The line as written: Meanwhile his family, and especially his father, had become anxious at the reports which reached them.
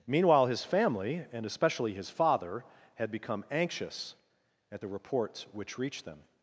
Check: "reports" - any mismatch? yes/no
no